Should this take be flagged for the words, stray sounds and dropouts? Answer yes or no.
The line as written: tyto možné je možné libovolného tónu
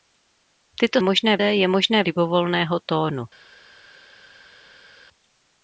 no